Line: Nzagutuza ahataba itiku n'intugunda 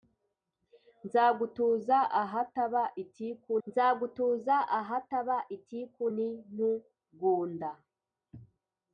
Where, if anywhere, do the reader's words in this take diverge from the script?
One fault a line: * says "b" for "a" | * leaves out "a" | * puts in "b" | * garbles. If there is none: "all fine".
* puts in "nzagutuza ahataba itiku"